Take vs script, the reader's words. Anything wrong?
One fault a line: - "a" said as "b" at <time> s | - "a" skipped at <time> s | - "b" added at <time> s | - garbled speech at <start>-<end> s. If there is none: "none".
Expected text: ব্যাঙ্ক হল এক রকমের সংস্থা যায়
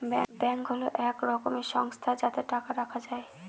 - "যাতে টাকা রাখা" added at 2.2 s